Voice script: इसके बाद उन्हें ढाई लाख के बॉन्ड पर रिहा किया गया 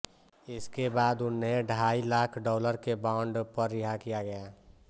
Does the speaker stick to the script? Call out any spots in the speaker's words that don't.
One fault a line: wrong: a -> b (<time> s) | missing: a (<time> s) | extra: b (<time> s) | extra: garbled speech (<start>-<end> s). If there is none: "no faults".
extra: डॉलर (2.4 s)